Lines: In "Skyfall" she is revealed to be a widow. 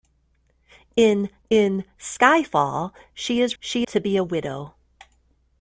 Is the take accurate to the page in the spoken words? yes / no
no